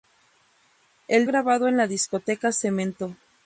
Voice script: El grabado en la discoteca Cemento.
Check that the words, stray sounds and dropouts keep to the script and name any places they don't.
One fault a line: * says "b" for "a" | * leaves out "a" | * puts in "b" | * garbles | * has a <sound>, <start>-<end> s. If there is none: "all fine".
all fine